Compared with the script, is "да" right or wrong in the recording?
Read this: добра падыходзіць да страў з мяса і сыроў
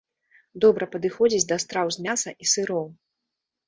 right